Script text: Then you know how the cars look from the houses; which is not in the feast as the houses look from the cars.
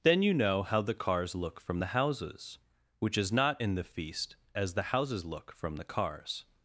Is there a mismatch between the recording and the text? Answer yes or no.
no